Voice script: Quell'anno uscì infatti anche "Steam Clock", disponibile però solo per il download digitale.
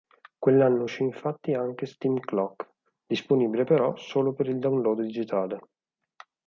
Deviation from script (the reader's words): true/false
false